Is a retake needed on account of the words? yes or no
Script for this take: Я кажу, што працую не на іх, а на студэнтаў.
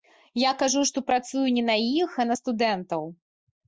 no